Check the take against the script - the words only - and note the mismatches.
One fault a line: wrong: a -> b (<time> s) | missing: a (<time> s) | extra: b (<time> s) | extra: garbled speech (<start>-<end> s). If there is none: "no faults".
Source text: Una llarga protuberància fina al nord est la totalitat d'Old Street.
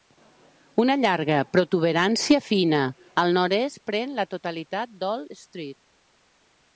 extra: pren (3.9 s)